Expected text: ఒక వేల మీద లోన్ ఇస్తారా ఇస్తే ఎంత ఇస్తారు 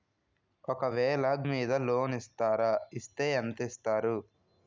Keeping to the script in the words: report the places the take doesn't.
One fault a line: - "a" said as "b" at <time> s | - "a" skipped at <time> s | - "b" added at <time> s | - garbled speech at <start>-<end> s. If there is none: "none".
none